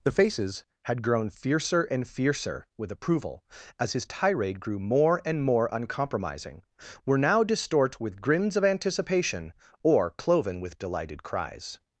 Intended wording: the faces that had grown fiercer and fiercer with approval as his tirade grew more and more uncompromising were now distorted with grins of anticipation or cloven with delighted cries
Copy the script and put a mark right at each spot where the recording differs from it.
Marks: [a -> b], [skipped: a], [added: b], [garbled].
the faces [skipped: that] had grown fiercer and fiercer with approval as his tirade grew more and more uncompromising were now [distorted -> distort] with grins of anticipation or cloven with delighted cries